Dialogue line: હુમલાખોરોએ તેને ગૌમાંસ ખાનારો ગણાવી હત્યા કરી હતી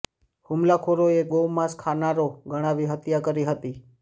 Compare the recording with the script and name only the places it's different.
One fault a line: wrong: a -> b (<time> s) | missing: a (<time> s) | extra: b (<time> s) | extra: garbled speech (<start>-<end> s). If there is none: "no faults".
missing: તેને (1.2 s)